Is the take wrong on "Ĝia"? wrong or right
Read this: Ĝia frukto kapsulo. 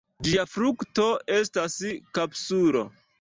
right